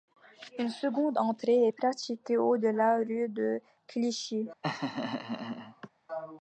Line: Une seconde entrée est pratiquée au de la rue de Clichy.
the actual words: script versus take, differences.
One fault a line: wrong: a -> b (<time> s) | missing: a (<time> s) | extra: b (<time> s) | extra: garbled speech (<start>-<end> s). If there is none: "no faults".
no faults